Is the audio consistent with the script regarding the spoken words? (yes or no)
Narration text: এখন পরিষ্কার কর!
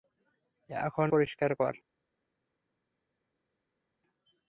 yes